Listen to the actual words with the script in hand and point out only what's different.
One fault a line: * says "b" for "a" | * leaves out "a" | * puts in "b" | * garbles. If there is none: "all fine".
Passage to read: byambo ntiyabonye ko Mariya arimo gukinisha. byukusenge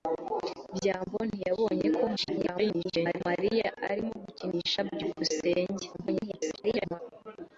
* garbles
* garbles